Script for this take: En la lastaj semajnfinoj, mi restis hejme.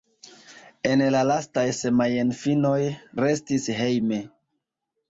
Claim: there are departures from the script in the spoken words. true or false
true